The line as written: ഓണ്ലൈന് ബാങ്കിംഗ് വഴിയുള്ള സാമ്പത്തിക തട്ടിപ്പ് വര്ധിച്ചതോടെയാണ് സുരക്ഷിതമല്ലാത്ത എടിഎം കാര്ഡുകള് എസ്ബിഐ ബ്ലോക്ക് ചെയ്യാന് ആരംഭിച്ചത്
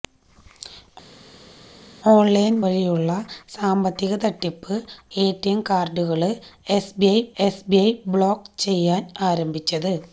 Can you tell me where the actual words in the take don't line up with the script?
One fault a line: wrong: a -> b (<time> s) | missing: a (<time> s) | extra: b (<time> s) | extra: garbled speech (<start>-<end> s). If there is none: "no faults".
missing: ബാങ്കിംഗ് (2.6 s)
missing: വര്ധിച്ചതോടെയാണ് സുരക്ഷിതമല്ലാത്ത (4.8 s)
extra: എസ്ബിഐ (7.4 s)